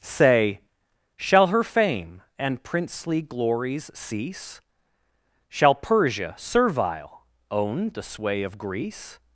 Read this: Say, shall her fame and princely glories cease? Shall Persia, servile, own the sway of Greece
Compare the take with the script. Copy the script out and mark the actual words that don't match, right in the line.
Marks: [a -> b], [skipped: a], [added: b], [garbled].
Say, shall her fame and princely glories cease? Shall Persia, servile, own the sway of Greece